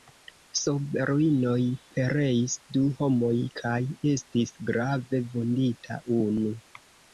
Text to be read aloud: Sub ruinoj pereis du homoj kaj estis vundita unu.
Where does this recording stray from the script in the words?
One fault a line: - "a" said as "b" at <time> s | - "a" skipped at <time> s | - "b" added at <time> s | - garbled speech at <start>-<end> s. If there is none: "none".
- "grave" added at 4.7 s